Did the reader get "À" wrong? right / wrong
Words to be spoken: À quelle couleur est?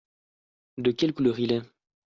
wrong